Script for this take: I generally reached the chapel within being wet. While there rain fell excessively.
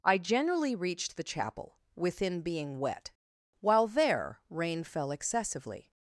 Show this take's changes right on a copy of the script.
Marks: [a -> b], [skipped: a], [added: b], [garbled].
I generally reached the chapel within being wet. While there rain fell excessively.